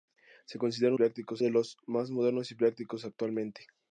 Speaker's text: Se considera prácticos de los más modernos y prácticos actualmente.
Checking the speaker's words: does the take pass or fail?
pass